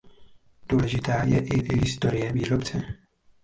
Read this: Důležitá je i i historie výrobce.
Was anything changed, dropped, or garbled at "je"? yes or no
no